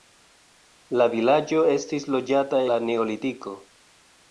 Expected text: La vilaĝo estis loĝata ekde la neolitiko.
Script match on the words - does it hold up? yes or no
no